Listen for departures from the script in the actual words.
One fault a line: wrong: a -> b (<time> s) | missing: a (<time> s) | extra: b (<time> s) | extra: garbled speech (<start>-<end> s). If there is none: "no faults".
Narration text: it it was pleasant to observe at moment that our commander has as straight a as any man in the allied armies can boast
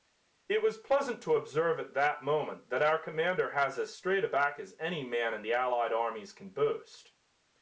missing: it (0.6 s)
extra: that (1.9 s)
extra: back (4.3 s)